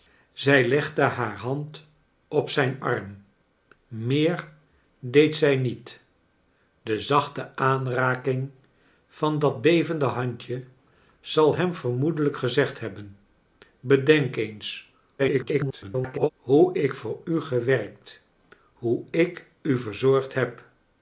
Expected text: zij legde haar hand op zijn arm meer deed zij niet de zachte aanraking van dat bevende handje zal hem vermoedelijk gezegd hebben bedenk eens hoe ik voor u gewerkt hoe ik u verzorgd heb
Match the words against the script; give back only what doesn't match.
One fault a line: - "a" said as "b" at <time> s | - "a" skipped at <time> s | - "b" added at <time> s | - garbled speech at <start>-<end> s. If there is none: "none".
- garbled speech at 15.2-16.3 s